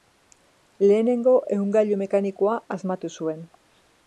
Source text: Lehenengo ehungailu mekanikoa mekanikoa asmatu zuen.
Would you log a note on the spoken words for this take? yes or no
yes